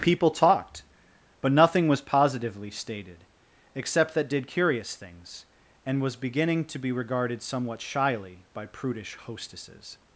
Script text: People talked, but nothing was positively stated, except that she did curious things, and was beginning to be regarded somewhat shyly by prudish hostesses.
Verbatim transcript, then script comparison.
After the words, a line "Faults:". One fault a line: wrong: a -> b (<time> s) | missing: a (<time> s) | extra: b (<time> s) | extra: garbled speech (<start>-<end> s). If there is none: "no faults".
People talked, but nothing was positively stated, except that did curious things, and was beginning to be regarded somewhat shyly by prudish hostesses.
Faults:
missing: she (4.3 s)